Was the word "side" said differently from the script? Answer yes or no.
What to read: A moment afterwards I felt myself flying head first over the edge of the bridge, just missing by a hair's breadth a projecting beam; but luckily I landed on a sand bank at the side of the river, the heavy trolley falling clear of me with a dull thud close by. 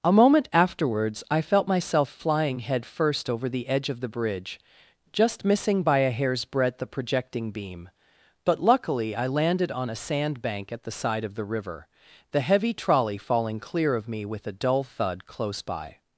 no